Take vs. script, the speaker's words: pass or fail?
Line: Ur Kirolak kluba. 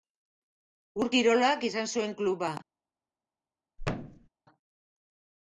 fail